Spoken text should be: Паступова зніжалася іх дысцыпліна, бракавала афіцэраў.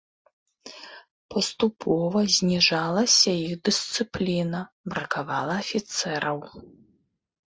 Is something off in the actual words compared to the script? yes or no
no